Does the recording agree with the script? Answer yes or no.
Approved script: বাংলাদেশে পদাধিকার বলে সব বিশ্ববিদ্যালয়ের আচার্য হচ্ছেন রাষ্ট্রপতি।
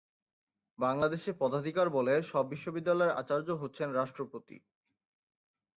yes